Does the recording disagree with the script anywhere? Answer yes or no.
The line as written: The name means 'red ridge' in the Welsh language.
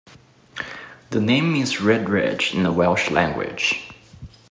no